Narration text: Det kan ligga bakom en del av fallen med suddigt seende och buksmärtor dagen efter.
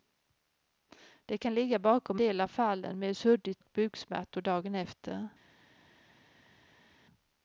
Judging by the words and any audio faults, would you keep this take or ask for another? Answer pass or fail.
fail